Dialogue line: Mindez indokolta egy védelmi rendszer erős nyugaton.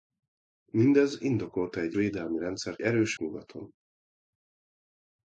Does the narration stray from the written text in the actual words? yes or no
no